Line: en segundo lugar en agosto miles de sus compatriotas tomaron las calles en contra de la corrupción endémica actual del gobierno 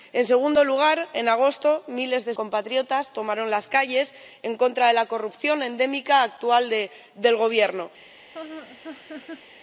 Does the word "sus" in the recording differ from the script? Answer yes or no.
yes